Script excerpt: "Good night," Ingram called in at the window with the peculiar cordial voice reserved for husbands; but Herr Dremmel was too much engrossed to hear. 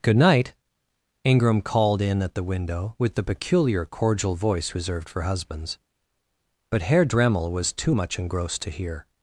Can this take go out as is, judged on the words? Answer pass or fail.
pass